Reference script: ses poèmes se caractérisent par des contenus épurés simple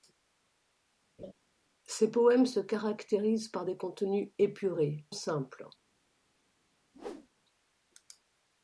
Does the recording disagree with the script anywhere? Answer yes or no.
no